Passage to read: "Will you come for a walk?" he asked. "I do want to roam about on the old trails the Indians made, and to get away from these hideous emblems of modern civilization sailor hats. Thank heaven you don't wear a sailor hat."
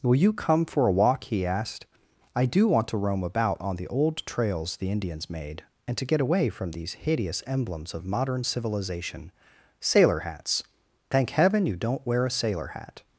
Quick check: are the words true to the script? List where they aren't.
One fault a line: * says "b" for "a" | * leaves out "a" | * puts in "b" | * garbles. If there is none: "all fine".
all fine